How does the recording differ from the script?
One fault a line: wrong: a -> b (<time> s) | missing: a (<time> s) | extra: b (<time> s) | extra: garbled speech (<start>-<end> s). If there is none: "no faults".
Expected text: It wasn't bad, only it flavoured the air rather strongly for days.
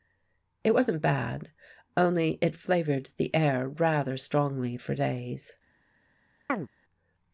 no faults